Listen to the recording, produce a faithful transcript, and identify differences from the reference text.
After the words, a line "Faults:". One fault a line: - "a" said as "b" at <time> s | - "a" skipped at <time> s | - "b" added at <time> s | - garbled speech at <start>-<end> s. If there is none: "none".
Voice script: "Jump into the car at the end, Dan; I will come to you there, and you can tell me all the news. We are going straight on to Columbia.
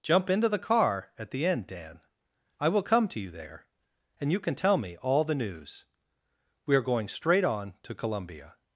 "Jump into the car at the end, Dan; I will come to you there, and you can tell me all the news. We are going straight on to Columbia.
Faults:
none